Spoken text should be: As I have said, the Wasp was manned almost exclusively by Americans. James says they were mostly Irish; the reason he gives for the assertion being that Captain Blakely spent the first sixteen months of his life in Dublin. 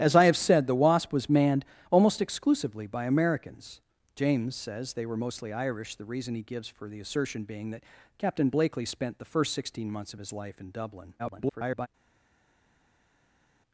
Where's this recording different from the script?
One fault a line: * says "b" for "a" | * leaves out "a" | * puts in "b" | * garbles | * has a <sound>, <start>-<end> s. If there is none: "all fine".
* garbles